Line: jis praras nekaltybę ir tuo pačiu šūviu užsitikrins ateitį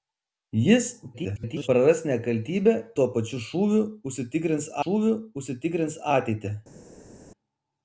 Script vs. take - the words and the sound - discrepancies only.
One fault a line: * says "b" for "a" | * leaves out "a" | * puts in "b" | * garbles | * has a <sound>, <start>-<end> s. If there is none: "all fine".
* garbles
* leaves out "ir"
* puts in "šūviu užsitikrins"